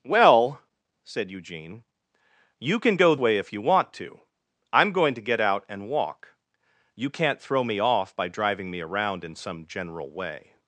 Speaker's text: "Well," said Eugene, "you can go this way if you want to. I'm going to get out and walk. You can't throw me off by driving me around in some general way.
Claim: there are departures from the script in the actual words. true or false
true